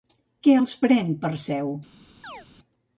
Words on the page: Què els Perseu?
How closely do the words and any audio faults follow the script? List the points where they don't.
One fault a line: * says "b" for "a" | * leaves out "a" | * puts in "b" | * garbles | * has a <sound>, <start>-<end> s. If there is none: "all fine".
* puts in "pren"
* has a chirp, 2.2-2.5 s